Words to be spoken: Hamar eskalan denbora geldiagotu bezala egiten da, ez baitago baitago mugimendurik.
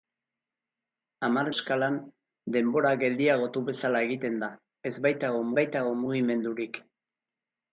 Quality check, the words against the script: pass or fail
pass